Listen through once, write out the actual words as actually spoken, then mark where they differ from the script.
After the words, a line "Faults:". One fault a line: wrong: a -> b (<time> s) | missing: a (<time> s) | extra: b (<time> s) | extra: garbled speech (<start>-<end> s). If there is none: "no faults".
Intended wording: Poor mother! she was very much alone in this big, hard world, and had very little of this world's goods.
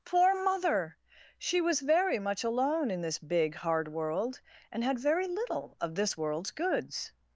Poor mother! she was very much alone in this big, hard world, and had very little of this world's goods.
Faults:
no faults